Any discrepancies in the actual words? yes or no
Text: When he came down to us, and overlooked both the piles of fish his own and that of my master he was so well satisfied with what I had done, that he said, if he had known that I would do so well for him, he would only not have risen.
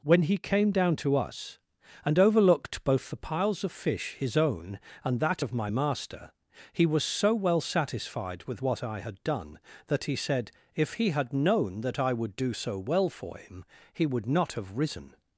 yes